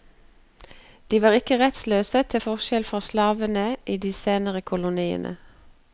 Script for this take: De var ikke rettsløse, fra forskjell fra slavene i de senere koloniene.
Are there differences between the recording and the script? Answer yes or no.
yes